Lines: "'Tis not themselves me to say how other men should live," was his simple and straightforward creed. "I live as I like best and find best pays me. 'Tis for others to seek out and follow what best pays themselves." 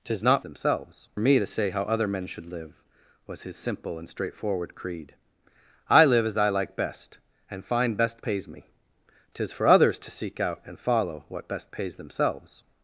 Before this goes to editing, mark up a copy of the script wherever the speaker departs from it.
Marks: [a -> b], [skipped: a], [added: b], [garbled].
"'Tis not themselves me to say how other men should live," was his simple and straightforward creed. "I live as I like best and find best pays me. 'Tis for others to seek out and follow what best pays themselves."